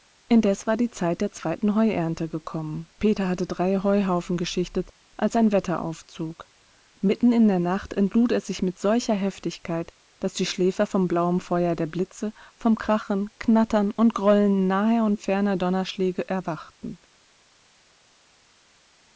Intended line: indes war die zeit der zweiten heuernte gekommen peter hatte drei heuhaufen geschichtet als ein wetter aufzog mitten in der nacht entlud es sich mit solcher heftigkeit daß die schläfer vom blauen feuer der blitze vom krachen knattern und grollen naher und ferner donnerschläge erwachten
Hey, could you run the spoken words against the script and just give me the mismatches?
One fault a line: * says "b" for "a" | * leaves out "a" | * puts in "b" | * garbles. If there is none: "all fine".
all fine